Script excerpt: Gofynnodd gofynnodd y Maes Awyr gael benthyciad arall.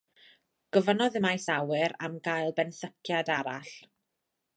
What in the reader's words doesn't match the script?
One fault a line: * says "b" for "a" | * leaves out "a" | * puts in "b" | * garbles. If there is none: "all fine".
* leaves out "gofynnodd"
* puts in "am"